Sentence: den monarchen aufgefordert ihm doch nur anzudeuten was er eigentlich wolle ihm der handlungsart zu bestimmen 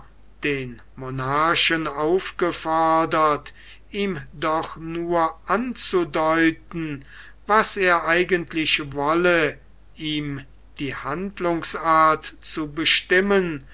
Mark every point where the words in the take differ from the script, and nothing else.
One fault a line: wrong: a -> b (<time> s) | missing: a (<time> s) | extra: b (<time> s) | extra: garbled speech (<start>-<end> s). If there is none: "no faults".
wrong: der -> die (10.8 s)